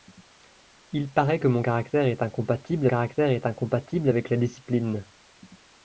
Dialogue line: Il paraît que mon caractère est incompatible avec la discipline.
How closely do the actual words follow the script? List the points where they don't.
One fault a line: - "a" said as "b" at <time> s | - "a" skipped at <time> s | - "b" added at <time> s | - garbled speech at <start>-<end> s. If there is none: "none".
- "caractère est incompatible" added at 2.9 s